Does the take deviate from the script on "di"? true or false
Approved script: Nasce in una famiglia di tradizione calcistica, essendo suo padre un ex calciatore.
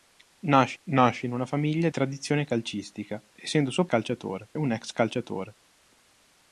true